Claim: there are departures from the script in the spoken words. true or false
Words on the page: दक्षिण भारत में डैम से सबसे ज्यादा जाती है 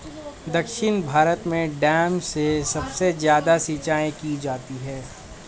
true